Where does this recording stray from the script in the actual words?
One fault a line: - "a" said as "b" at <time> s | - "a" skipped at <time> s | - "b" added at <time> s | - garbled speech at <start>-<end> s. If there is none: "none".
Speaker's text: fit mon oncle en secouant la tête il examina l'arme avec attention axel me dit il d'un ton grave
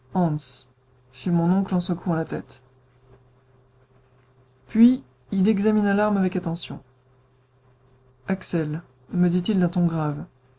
- "puis" added at 4.7 s